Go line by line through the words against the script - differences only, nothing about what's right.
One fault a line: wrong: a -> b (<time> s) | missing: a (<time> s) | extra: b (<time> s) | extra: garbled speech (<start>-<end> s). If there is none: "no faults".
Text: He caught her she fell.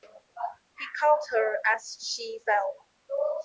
extra: as (1.7 s)